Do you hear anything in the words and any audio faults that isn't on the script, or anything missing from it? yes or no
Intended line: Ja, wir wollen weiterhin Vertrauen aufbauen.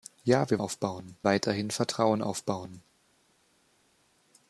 yes